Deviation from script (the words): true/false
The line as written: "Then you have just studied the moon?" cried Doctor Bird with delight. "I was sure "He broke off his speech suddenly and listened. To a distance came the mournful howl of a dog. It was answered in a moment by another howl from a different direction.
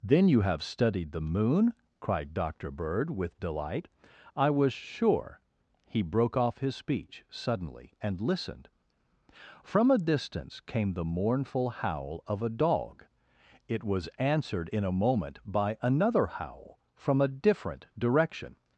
true